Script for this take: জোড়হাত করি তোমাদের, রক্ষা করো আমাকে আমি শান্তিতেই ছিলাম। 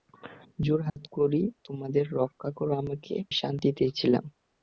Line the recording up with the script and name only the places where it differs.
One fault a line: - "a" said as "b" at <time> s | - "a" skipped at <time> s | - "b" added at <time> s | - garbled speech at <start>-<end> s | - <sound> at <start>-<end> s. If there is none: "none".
- dropout at 0.9-1.0 s
- "আমি" skipped at 3.1 s